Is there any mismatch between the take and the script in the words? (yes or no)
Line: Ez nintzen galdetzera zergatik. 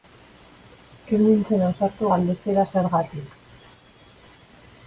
yes